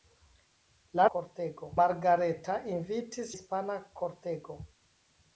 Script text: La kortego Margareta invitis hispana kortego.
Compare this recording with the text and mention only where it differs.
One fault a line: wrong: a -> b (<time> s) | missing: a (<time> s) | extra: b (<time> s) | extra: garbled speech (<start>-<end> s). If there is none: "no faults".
no faults